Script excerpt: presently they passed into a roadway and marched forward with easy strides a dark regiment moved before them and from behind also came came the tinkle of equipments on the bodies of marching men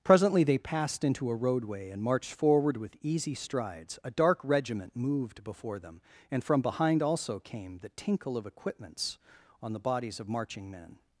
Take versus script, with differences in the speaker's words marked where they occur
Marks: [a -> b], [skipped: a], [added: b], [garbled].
presently they passed into a roadway and marched forward with easy strides a dark regiment moved before them and from behind also came [skipped: came] the tinkle of equipments on the bodies of marching men